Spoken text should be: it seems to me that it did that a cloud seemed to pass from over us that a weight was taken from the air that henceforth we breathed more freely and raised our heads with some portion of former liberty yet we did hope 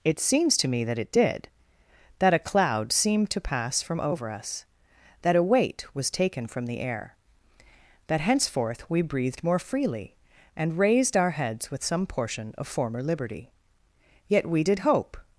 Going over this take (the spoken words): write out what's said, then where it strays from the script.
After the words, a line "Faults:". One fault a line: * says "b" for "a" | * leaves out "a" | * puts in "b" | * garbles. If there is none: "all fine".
it seems to me that it did that a cloud seemed to pass from over us that a weight was taken from the air that henceforth we breathed more freely and raised our heads with some portion of former liberty yet we did hope
Faults:
all fine